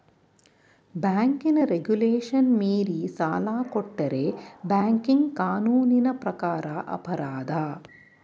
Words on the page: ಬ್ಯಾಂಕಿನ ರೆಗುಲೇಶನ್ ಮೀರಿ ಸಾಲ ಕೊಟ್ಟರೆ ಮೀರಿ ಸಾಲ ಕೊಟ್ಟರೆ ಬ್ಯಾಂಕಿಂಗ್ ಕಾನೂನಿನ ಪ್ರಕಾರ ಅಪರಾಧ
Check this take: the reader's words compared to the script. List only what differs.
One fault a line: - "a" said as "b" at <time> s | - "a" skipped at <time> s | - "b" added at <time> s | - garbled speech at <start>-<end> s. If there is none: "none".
- "ಮೀರಿ ಸಾಲ ಕೊಟ್ಟರೆ" skipped at 4.2 s